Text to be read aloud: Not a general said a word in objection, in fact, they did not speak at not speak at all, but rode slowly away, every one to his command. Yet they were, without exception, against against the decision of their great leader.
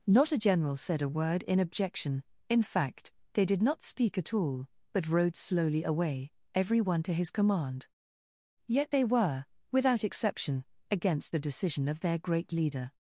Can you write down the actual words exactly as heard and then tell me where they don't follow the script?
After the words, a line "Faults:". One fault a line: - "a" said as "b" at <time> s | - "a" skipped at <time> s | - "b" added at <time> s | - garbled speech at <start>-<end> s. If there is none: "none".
Not a general said a word in objection, in fact, they did not speak at all, but rode slowly away, every one to his command. Yet they were, without exception, against the decision of their great leader.
Faults:
- "not speak at" skipped at 4.3 s
- "against" skipped at 11.3 s